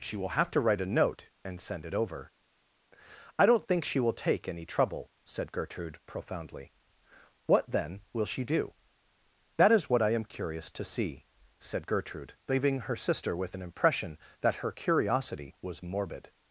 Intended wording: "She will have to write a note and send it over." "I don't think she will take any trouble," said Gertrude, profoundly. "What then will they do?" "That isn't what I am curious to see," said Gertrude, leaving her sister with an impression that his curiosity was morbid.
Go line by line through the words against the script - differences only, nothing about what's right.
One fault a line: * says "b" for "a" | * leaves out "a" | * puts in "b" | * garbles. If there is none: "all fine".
* says "she" for "they"
* says "is" for "isn't"
* says "her" for "his"